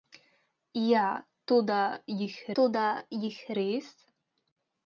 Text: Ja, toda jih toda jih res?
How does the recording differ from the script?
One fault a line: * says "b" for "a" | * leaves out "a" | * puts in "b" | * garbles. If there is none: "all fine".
all fine